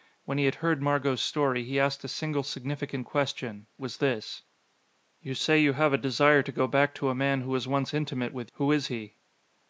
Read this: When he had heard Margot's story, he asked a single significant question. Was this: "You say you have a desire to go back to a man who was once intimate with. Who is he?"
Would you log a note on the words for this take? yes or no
no